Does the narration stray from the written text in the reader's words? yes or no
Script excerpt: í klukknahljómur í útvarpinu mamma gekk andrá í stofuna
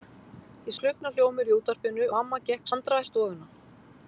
no